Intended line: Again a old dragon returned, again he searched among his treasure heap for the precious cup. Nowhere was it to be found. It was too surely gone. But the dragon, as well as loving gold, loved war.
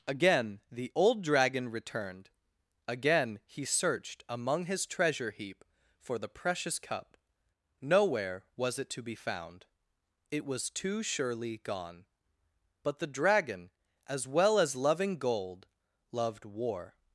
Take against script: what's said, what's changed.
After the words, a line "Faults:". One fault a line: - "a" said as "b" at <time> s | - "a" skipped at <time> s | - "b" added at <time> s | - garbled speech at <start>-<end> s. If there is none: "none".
Again the old dragon returned, again he searched among his treasure heap for the precious cup. Nowhere was it to be found. It was too surely gone. But the dragon, as well as loving gold, loved war.
Faults:
- "a" said as "the" at 0.7 s